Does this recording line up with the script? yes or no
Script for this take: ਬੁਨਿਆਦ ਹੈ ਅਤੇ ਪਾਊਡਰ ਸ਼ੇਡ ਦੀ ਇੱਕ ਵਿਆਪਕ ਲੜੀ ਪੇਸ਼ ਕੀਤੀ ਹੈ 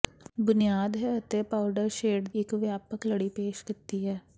no